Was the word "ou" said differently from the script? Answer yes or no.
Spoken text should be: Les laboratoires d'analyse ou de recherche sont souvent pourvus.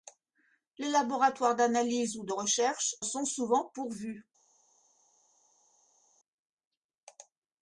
no